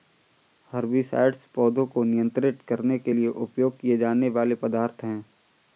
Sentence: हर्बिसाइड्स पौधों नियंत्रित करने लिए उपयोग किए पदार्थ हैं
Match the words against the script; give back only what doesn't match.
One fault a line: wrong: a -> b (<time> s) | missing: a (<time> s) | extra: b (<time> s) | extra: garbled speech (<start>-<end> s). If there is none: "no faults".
extra: को (1.9 s)
extra: के (3.0 s)
extra: जाने वाले (4.0 s)